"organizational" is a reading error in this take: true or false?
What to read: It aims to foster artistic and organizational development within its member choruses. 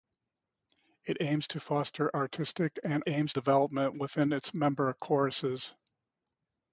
true